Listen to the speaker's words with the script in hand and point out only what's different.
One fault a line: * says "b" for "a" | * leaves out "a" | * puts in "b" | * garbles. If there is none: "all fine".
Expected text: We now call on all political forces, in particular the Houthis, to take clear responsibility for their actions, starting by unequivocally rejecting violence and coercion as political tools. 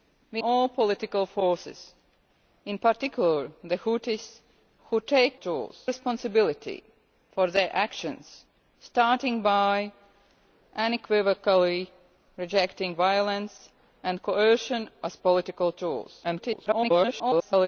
* leaves out "now call on"
* says "tools" for "clear"
* garbles